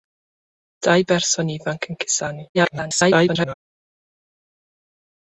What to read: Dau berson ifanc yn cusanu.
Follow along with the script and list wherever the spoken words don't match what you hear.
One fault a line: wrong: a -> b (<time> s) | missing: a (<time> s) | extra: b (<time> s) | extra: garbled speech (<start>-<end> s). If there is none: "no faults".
extra: garbled speech (2.5-3.5 s)